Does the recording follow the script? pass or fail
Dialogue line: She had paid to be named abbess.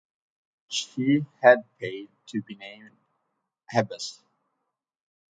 pass